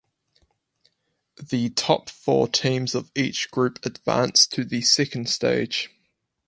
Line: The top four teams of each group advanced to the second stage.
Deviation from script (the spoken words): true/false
false